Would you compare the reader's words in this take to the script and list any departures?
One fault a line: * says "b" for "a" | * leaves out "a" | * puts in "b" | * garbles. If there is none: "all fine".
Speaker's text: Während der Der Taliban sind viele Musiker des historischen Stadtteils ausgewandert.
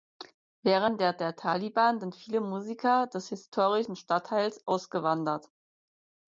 all fine